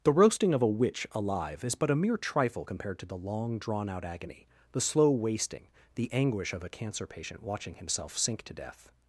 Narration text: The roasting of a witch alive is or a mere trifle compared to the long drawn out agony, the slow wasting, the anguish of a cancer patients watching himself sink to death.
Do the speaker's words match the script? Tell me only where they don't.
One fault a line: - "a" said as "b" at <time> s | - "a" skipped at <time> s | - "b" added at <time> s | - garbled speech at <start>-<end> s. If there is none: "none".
- "or" said as "but" at 1.8 s
- "patients" said as "patient" at 7.1 s